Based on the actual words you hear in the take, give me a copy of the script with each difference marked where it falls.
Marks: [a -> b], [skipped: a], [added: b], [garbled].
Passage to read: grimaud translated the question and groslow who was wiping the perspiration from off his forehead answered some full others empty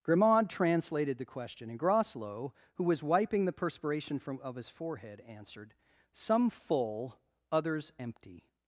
grimaud translated the question and groslow who was wiping the perspiration from [off -> of] his forehead answered some full others empty